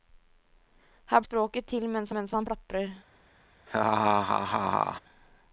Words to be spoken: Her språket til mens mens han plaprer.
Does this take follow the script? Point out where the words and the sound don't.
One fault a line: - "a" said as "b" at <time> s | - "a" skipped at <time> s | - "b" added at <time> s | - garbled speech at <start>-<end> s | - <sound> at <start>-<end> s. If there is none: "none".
- laugh at 3.7-5.0 s